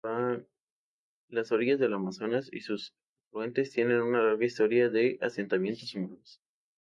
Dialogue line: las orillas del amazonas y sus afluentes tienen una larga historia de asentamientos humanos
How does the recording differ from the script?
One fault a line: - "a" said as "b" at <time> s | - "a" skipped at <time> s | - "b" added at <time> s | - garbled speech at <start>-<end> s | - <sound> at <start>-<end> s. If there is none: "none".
none